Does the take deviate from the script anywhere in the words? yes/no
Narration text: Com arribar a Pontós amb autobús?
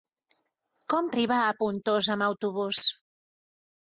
no